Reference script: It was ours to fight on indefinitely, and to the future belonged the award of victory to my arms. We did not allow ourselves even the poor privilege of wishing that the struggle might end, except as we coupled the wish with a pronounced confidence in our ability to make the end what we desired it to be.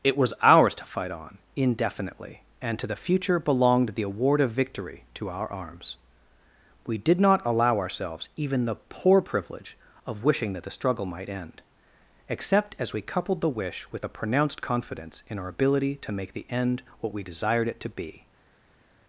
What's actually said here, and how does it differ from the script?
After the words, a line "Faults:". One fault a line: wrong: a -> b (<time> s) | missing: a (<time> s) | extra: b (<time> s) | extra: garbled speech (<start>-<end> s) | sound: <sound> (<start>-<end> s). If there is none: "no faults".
It was ours to fight on indefinitely, and to the future belonged the award of victory to our arms. We did not allow ourselves even the poor privilege of wishing that the struggle might end, except as we coupled the wish with a pronounced confidence in our ability to make the end what we desired it to be.
Faults:
wrong: my -> our (5.3 s)